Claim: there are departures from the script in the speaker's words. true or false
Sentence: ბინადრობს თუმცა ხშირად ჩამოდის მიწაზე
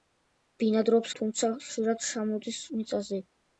false